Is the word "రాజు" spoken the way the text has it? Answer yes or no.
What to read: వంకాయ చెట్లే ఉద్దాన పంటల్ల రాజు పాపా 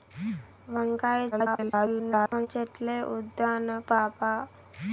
no